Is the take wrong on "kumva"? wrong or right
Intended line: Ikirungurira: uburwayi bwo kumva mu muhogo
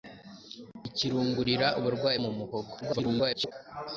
wrong